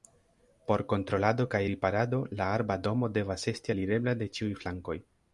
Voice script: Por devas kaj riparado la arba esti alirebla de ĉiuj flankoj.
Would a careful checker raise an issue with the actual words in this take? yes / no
yes